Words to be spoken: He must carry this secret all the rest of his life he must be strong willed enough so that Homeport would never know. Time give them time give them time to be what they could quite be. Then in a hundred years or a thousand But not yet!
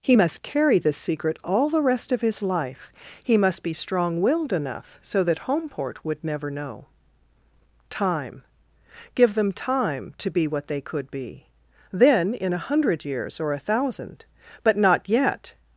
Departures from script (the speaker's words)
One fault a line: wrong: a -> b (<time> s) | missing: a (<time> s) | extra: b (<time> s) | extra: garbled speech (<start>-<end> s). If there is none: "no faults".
missing: give them time (10.1 s)
missing: quite (11.1 s)